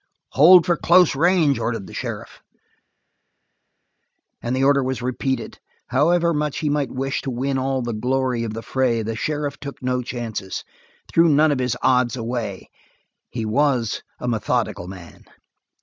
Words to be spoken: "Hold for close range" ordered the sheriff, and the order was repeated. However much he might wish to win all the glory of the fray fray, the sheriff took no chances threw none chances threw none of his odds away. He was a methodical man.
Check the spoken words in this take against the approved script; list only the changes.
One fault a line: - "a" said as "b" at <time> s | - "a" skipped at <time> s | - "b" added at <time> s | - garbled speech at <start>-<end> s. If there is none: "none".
- "fray" skipped at 9.0 s
- "chances threw none" skipped at 11.5 s